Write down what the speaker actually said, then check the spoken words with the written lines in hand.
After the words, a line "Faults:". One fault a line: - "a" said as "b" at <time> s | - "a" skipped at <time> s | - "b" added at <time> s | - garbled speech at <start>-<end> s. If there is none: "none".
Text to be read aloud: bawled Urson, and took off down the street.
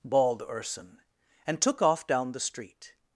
bawled Urson, and took off down the street.
Faults:
none